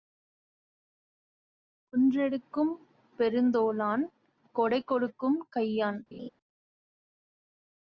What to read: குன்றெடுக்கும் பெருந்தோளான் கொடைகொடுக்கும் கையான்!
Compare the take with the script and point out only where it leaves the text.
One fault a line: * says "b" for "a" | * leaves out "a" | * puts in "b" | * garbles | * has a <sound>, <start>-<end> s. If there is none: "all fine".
* has a laugh, 6.1-6.3 s